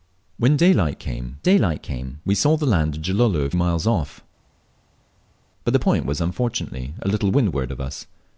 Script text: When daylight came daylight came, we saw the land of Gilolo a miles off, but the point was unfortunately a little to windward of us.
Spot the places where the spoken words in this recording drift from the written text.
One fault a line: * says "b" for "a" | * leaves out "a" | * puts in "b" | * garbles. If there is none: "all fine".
all fine